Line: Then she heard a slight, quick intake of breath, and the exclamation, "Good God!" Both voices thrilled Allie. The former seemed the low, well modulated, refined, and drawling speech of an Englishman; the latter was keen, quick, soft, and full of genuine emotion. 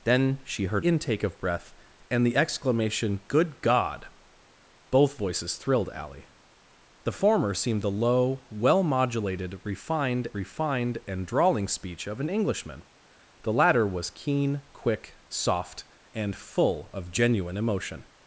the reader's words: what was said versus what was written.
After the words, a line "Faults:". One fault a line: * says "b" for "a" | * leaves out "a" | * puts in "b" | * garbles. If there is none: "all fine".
Then she heard intake of breath, and the exclamation, "Good God!" Both voices thrilled Allie. The former seemed the low, well modulated, refined refined, and drawling speech of an Englishman; the latter was keen, quick, soft, and full of genuine emotion.
Faults:
* leaves out "a slight quick"
* puts in "refined"